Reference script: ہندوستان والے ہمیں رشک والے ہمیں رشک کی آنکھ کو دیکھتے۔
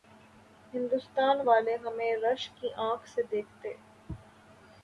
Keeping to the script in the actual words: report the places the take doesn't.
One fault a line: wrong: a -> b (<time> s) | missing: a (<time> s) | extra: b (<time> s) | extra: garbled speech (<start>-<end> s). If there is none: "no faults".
missing: والے ہمیں رشک (2.6 s)
wrong: کو -> سے (3.1 s)